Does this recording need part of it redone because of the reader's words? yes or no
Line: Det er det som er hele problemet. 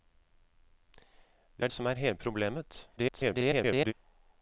yes